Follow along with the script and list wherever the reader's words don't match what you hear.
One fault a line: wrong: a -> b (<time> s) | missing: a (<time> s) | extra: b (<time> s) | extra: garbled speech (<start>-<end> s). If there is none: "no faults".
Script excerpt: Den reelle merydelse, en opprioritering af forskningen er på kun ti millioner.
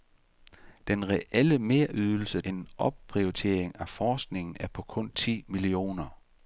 no faults